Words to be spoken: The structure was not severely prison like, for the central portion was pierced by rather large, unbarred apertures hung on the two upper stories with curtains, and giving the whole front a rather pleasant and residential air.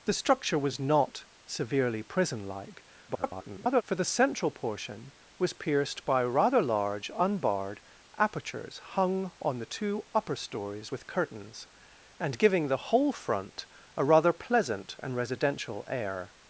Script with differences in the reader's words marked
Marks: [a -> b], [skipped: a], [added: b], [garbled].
The structure was not severely prison like, [garbled] for the central portion was pierced by rather large, unbarred apertures hung on the two upper stories with curtains, and giving the whole front a rather pleasant and residential air.